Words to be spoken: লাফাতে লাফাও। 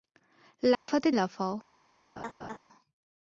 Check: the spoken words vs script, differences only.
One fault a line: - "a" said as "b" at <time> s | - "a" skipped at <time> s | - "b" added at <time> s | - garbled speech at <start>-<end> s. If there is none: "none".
none